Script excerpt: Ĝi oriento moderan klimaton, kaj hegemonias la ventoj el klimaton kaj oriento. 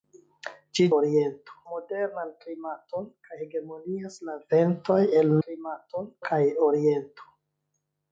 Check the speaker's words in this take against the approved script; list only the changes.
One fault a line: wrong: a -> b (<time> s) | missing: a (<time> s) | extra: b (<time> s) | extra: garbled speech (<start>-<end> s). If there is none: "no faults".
no faults